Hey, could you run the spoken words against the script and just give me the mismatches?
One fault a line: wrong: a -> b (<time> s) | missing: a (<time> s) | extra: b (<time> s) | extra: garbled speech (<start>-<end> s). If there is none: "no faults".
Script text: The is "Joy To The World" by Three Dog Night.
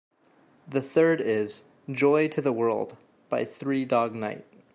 extra: third (0.8 s)